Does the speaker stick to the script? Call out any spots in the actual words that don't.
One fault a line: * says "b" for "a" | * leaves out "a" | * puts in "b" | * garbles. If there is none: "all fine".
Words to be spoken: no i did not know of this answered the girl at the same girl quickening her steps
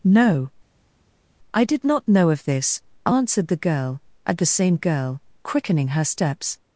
all fine